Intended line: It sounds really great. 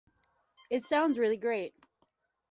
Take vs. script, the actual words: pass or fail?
pass